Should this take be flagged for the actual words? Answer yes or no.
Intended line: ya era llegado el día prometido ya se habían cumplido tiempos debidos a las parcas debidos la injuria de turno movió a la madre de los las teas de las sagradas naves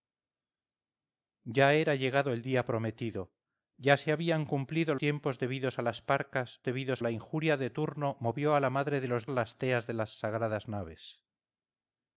no